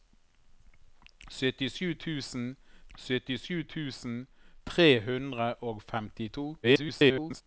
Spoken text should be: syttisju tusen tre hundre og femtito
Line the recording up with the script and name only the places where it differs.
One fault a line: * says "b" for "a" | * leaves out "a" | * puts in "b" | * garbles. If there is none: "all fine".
* puts in "syttisju tusen"
* garbles